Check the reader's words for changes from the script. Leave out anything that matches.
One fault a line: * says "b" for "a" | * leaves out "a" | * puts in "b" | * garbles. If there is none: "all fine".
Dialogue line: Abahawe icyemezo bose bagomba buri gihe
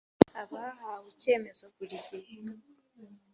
* leaves out "bose bagomba"